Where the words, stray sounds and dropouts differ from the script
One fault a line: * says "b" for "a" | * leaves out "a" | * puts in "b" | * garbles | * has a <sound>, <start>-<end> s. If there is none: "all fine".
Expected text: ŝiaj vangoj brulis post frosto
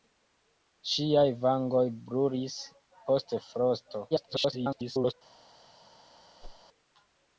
* garbles
* has a whoosh, 6.4-6.6 s